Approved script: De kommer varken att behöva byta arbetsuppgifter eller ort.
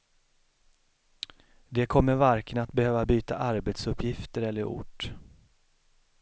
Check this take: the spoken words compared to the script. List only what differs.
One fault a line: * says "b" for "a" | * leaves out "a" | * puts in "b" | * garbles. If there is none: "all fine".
all fine